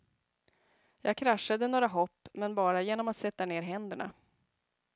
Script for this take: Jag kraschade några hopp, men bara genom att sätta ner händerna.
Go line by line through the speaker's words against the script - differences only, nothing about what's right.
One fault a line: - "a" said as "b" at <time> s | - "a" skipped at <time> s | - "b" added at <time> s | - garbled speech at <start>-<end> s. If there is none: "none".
none